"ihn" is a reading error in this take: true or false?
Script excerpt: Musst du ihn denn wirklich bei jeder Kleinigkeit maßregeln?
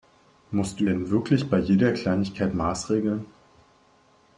true